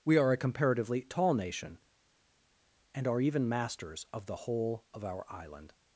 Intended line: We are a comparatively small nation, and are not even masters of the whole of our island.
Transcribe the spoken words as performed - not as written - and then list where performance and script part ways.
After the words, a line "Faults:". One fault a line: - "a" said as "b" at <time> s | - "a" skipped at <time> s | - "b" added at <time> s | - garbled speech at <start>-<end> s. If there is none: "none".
We are a comparatively tall nation, and are even masters of the whole of our island.
Faults:
- "small" said as "tall" at 1.0 s
- "not" skipped at 3.2 s